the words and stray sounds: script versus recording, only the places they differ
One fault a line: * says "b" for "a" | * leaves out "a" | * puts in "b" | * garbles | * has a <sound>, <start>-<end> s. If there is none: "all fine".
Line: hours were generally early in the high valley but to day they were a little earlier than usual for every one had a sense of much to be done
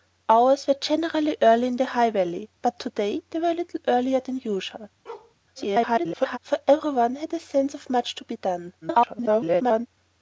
* has a bark, 5.1-5.4 s
* garbles
* garbles